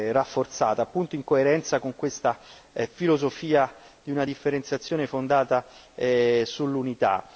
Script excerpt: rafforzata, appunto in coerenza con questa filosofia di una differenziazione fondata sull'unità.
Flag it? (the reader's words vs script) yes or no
no